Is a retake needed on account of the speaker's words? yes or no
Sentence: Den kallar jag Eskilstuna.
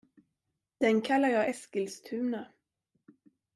no